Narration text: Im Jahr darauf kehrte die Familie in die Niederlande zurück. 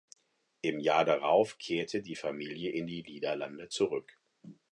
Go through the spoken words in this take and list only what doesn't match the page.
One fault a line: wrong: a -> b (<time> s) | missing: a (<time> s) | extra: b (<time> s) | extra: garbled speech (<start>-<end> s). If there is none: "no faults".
no faults